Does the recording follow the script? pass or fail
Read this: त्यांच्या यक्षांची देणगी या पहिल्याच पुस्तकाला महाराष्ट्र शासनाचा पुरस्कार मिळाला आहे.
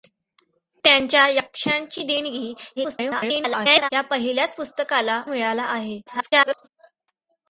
fail